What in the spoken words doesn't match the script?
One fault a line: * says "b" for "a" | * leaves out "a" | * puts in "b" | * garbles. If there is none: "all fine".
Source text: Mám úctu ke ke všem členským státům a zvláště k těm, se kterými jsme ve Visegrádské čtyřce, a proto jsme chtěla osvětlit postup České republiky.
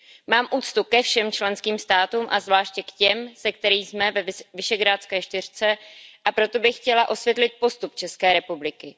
* leaves out "ke"
* says "bych" for "jsme"